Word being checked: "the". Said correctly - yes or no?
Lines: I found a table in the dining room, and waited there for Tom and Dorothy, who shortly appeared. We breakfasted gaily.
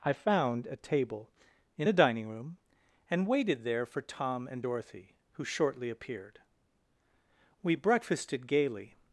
no